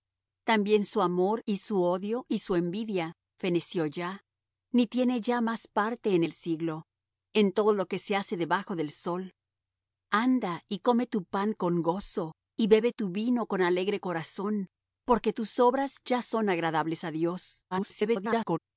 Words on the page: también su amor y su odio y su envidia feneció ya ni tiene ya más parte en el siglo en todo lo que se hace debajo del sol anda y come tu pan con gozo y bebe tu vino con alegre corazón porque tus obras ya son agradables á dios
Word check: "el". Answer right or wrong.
right